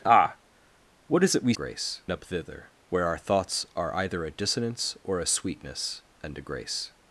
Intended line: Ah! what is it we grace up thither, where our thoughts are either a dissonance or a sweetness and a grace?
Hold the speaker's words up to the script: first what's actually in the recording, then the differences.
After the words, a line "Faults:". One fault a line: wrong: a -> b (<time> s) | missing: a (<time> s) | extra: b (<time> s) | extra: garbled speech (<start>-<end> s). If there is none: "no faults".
Ah! what is it we grace up thither, where our thoughts are either a dissonance or a sweetness and a grace?
Faults:
no faults